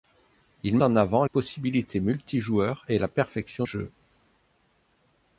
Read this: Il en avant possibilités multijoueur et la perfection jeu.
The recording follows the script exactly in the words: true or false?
true